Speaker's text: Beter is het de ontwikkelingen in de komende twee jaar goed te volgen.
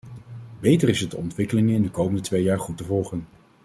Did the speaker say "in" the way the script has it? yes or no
yes